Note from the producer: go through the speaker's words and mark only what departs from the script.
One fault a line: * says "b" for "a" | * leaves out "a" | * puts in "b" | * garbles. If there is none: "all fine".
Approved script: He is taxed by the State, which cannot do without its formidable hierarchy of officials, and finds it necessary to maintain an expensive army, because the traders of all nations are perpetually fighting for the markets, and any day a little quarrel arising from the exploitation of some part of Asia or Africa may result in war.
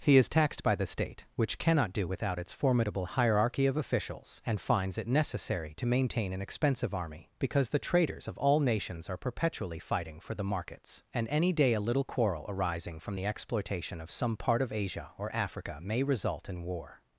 all fine